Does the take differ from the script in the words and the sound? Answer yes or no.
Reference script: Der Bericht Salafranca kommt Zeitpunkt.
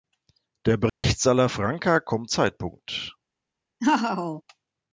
yes